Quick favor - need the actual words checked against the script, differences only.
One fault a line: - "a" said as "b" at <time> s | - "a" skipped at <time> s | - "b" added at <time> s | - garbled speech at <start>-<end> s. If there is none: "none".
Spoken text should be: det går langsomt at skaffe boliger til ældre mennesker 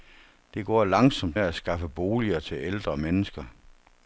none